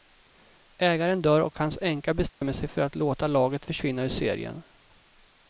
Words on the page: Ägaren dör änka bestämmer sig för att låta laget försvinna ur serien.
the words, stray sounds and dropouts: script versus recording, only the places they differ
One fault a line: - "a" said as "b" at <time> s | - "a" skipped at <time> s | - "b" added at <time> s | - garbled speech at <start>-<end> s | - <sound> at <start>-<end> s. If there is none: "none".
- "och hans" added at 1.4 s
- dropout at 2.3-2.4 s